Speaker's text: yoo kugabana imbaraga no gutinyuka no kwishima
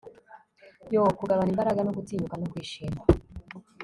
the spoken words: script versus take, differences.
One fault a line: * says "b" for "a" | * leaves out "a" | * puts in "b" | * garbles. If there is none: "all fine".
all fine